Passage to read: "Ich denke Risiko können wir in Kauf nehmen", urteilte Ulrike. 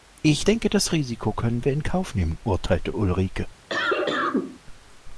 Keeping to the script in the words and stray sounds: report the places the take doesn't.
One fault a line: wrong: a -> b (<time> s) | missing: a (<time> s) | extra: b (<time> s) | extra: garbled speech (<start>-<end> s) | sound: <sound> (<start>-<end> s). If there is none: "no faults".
extra: das (0.7 s)
sound: cough (3.7-4.6 s)